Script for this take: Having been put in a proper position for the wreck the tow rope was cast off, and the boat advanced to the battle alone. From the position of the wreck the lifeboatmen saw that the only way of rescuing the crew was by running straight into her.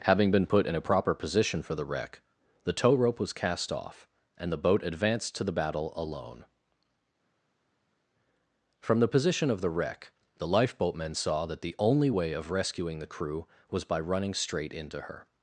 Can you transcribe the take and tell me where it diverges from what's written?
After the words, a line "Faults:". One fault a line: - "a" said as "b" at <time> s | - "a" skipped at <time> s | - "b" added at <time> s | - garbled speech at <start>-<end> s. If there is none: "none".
Having been put in a proper position for the wreck the tow rope was cast off, and the boat advanced to the battle alone. From the position of the wreck the lifeboatmen saw that the only way of rescuing the crew was by running straight into her.
Faults:
none